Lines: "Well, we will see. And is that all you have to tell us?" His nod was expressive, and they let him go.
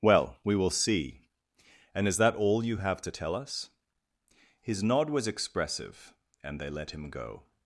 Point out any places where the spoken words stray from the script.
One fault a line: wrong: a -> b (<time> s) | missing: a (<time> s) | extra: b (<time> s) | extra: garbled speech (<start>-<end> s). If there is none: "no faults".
no faults